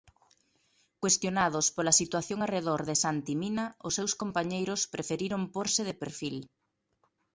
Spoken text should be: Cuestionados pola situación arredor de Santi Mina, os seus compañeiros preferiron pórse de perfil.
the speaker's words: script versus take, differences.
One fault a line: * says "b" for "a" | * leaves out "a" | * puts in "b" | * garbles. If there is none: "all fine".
all fine